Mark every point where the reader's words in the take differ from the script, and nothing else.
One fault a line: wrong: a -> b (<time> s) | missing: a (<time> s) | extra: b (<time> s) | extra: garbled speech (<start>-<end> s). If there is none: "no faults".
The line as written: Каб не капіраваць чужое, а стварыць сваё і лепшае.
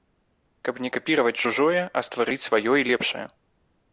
no faults